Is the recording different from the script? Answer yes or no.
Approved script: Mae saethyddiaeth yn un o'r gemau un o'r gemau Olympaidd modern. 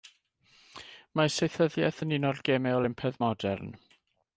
yes